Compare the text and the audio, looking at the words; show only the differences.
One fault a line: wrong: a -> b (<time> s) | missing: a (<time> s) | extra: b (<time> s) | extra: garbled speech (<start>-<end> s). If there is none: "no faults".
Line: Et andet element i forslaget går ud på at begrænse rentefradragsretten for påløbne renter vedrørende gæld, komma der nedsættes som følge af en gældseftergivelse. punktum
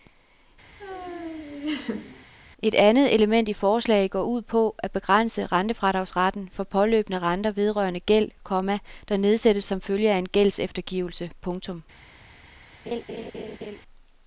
no faults